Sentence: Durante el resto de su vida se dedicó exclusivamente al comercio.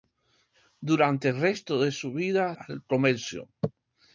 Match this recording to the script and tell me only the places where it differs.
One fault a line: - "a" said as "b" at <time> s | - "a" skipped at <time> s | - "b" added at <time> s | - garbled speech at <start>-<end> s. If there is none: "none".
- "se dedicó exclusivamente" skipped at 2.5 s